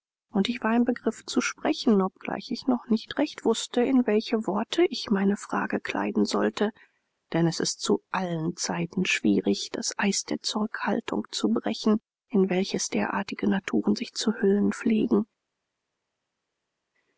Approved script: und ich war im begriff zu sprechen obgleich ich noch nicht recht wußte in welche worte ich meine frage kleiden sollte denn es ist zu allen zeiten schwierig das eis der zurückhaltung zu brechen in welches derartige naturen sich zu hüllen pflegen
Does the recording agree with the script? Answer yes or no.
yes